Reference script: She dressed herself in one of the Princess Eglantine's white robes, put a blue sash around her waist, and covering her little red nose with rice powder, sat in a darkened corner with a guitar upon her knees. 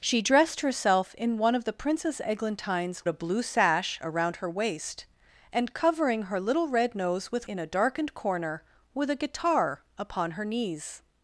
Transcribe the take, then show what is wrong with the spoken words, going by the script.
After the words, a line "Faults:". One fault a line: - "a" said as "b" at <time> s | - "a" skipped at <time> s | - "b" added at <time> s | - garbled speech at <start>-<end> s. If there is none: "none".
She dressed herself in one of the Princess Eglantine's a blue sash around her waist, and covering her little red nose with in a darkened corner with a guitar upon her knees.
Faults:
- "white robes put" skipped at 3.0 s
- "rice powder sat" skipped at 7.5 s